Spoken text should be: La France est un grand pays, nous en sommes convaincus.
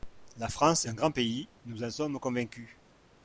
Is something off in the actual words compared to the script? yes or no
yes